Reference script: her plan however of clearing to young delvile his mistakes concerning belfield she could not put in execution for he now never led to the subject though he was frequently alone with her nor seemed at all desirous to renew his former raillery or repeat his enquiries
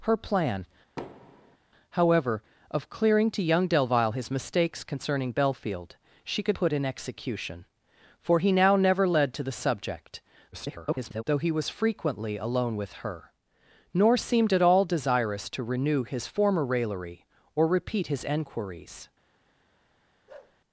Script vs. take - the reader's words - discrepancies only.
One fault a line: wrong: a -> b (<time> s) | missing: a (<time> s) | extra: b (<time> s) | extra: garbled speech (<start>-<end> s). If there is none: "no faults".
missing: not (6.6 s)
extra: garbled speech (10.5-11.2 s)